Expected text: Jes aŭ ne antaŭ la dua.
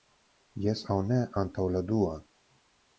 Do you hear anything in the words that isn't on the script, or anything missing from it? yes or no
no